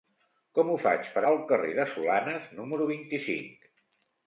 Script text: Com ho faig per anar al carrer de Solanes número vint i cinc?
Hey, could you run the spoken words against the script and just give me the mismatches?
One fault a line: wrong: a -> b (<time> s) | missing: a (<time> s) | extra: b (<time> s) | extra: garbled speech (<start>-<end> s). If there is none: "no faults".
missing: anar (1.2 s)